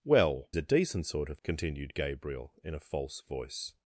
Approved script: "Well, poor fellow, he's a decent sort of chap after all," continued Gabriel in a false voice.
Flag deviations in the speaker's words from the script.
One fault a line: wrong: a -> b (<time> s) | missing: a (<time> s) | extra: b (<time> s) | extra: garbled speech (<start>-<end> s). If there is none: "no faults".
missing: poor fellow he's (0.5 s)
missing: chap after all (1.4 s)